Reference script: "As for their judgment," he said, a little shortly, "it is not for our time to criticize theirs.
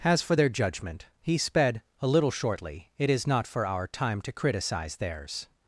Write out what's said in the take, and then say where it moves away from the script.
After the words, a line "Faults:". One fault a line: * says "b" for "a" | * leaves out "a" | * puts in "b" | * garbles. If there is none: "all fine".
"As for their judgment," he sped, a little shortly, "it is not for our time to criticize theirs.
Faults:
* says "sped" for "said"